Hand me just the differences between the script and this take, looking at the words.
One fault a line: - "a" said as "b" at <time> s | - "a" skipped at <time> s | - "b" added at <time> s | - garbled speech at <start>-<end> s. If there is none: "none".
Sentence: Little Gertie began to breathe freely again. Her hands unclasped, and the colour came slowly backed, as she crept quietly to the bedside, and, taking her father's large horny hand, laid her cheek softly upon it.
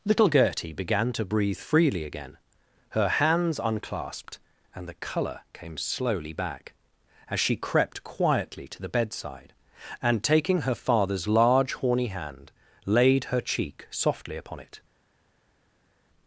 - "backed" said as "back" at 6.3 s